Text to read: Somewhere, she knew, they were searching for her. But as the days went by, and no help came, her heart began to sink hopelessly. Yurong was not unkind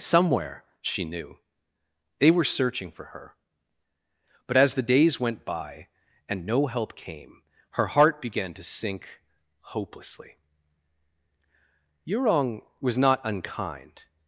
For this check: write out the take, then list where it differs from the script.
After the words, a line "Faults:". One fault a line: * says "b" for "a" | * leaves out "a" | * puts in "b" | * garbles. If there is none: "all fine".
Somewhere, she knew, they were searching for her. But as the days went by, and no help came, her heart began to sink hopelessly. Yurong was not unkind
Faults:
all fine